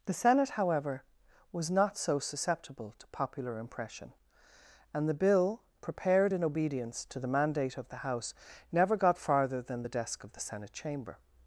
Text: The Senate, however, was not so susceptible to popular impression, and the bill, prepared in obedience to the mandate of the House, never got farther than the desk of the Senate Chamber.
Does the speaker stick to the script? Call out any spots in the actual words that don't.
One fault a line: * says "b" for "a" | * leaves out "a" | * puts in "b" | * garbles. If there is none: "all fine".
all fine